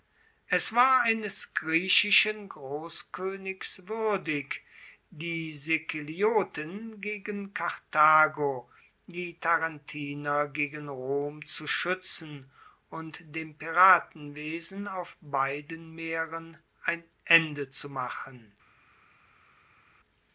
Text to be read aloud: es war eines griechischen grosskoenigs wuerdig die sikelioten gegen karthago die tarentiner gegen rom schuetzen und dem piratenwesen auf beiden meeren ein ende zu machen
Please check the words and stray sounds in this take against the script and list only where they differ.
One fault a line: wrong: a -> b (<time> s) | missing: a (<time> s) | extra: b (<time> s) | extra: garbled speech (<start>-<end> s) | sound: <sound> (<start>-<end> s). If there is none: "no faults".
extra: zu (11.5 s)